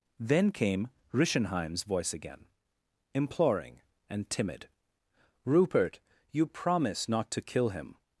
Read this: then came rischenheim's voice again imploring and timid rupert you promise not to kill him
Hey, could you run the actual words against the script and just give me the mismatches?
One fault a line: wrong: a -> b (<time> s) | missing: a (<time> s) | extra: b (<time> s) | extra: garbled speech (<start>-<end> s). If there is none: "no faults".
no faults